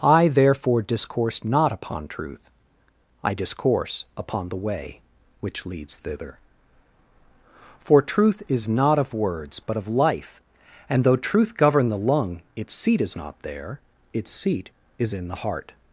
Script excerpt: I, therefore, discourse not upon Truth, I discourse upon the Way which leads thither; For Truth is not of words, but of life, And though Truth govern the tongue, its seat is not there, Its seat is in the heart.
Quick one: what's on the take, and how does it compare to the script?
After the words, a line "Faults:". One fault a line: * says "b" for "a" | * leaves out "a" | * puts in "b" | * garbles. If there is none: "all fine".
I, therefore, discourse not upon Truth, I discourse upon the Way which leads thither; For Truth is not of words, but of life, And though Truth govern the lung, its seat is not there, Its seat is in the heart.
Faults:
* says "lung" for "tongue"